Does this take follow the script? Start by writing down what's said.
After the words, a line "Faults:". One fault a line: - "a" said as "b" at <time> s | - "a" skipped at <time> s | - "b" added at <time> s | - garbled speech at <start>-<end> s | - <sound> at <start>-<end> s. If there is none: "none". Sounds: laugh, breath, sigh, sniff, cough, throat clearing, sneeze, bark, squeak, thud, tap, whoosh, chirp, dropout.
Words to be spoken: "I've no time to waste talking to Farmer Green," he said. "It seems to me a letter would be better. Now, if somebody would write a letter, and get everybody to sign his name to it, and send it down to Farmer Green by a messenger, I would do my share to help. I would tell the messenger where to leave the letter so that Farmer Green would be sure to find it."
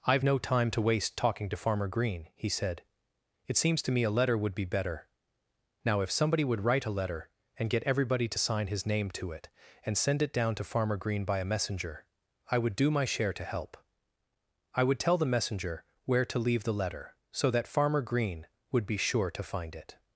"I've no time to waste talking to Farmer Green," he said. "It seems to me a letter would be better. Now, if somebody would write a letter, and get everybody to sign his name to it, and send it down to Farmer Green by a messenger, I would do my share to help. I would tell the messenger where to leave the letter so that Farmer Green would be sure to find it."
Faults:
none